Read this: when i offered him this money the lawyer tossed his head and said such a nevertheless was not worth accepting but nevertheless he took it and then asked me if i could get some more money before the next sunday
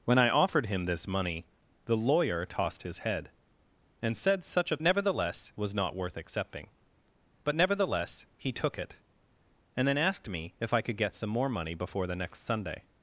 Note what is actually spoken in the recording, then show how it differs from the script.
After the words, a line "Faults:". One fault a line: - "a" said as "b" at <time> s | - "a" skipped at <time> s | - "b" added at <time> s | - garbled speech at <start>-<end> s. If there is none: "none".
when i offered him this money the lawyer tossed his head and said such a nevertheless was not worth accepting but nevertheless he took it and then asked me if i could get some more money before the next sunday
Faults:
none